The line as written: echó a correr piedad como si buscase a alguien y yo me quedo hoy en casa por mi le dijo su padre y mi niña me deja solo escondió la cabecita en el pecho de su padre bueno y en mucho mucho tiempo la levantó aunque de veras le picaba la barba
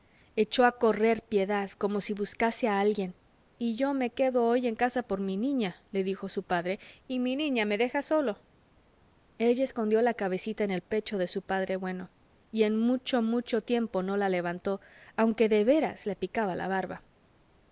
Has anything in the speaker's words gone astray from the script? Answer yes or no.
yes